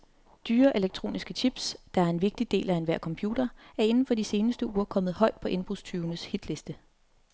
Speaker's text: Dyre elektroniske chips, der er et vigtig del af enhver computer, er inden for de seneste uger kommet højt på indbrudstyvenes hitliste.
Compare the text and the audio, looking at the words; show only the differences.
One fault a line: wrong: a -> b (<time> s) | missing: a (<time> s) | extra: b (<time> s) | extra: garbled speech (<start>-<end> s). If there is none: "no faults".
wrong: et -> en (2.1 s)